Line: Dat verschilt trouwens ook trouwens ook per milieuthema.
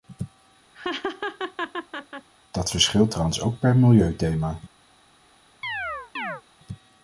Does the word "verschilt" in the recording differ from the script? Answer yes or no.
no